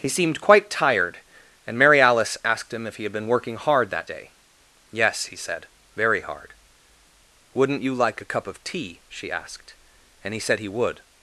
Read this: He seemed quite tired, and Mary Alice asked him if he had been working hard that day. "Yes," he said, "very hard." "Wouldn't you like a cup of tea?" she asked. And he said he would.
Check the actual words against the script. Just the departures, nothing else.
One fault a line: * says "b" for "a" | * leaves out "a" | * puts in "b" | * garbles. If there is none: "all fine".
all fine